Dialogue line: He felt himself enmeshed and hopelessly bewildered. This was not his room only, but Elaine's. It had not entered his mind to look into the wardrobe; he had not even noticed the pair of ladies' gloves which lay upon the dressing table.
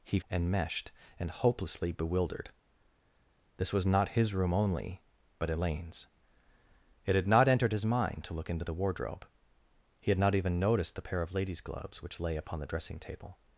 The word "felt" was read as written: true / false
false